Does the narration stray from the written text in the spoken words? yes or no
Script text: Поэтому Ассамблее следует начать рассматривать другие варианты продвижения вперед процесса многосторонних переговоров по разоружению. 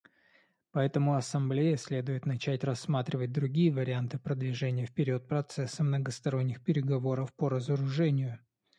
no